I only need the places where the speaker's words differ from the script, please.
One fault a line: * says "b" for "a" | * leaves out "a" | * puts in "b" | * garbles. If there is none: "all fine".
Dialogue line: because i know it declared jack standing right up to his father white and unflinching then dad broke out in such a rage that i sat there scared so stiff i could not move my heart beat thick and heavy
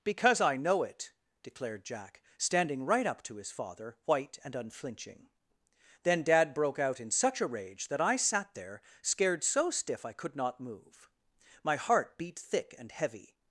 all fine